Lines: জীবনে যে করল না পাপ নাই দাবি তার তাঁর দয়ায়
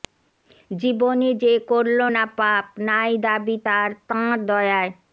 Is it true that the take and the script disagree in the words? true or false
false